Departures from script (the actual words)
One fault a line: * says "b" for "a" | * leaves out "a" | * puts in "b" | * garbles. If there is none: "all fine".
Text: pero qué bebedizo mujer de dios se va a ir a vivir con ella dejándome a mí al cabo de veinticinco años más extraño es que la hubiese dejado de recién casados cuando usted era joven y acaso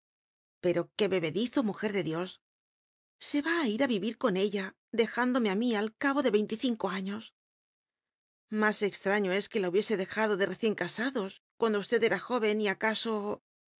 all fine